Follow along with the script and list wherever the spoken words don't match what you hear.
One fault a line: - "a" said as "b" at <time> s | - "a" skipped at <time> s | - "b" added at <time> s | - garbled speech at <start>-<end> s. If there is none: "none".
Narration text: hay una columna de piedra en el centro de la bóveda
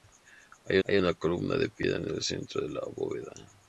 - "hay" added at 0.8 s